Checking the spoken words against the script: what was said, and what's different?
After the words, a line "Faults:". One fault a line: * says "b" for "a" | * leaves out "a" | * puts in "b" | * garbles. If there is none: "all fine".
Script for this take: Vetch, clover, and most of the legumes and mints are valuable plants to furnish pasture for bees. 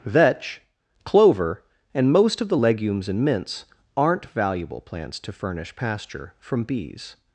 Vetch, clover, and most of the legumes and mints aren't valuable plants to furnish pasture from bees.
Faults:
* says "aren't" for "are"
* says "from" for "for"